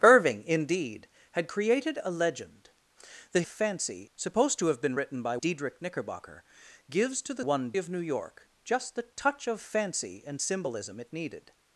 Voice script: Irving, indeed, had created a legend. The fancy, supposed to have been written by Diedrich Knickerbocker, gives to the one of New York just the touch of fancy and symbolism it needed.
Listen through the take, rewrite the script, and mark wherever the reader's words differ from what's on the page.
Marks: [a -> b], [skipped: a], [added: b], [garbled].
Irving, indeed, had created a legend. The fancy, supposed to have been written by Diedrich Knickerbocker, gives to the one of New York just the touch of fancy and symbolism it needed.